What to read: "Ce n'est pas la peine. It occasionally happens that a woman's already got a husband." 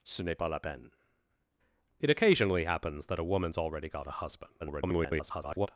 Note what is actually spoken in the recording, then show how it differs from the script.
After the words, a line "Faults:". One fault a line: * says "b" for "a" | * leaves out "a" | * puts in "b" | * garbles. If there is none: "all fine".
"Ce n'est pas la peine. It occasionally happens that a woman's already got a husband." [garbled]
Faults:
* garbles